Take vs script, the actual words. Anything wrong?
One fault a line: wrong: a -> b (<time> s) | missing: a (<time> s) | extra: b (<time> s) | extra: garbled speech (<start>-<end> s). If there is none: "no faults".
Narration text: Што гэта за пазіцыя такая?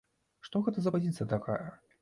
no faults